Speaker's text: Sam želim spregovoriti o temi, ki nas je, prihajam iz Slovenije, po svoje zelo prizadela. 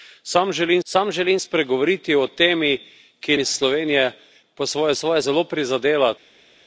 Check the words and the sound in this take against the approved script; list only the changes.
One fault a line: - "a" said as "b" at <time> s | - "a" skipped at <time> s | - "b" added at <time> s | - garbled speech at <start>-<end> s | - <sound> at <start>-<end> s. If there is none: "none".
- "sam želim" added at 0.8 s
- "nas je prihajam" skipped at 3.4 s
- "svoje" added at 4.9 s